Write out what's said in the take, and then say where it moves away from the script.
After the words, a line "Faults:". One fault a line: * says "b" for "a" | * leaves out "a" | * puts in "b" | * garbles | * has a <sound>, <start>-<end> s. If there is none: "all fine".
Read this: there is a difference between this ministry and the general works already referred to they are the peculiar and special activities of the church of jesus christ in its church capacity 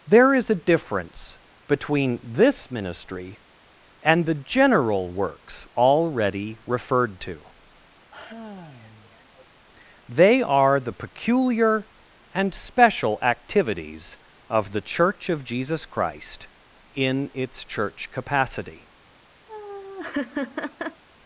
there is a difference between this ministry and the general works already referred to they are the peculiar and special activities of the church of jesus christ in its church capacity
Faults:
* has a sigh, 8.1-9.4 s
* has a laugh, 19.5-21.0 s